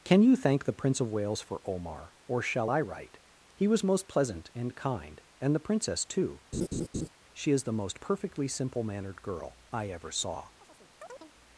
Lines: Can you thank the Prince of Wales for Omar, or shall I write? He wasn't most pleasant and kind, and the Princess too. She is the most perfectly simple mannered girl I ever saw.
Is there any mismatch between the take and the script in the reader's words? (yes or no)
yes